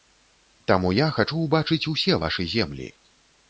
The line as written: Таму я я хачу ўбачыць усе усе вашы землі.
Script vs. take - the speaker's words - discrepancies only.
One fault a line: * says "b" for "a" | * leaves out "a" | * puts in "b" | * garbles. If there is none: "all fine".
* leaves out "я"
* leaves out "усе"